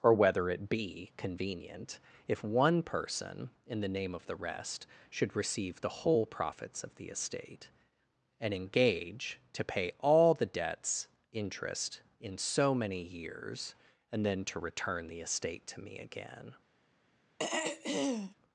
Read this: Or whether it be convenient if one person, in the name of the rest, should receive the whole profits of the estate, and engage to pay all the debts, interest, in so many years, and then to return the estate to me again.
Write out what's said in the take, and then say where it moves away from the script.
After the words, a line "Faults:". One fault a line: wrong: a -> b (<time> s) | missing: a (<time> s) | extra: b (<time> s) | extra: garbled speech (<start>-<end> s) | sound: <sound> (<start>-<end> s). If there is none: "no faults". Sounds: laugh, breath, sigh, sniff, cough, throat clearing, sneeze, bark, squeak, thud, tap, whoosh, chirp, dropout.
Or whether it be convenient if one person, in the name of the rest, should receive the whole profits of the estate, and engage to pay all the debts, interest, in so many years, and then to return the estate to me again.
Faults:
sound: throat clearing (17.4-18.4 s)